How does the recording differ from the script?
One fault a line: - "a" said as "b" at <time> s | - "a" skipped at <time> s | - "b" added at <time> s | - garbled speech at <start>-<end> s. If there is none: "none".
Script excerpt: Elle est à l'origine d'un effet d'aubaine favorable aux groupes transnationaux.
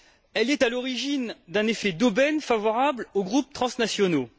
none